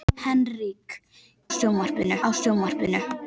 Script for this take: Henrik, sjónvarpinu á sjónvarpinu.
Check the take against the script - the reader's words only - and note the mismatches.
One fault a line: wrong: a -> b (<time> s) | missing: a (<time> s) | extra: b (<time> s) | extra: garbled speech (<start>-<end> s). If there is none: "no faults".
no faults